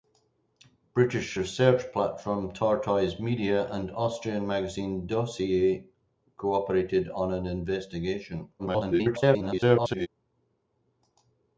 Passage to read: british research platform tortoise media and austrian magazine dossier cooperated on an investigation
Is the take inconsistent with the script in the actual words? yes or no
yes